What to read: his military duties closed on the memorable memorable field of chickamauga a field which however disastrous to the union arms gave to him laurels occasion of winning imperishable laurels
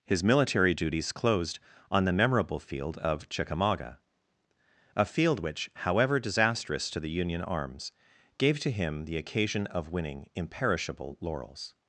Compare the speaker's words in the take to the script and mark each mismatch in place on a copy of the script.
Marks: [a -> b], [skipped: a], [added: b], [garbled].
his military duties closed on the memorable [skipped: memorable] field of chickamauga a field which however disastrous to the union arms gave to him [laurels -> the] occasion of winning imperishable laurels